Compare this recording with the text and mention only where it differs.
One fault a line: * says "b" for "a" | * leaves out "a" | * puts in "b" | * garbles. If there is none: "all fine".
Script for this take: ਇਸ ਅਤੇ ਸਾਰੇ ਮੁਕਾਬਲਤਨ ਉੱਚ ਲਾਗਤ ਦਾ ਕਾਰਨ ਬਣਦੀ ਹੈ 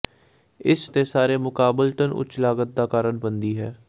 all fine